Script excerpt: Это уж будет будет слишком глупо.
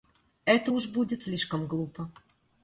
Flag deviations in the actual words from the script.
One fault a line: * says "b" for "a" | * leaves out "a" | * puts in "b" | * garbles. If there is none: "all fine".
* leaves out "будет"